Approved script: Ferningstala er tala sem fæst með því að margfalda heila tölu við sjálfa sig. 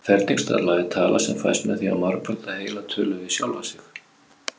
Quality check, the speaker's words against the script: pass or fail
pass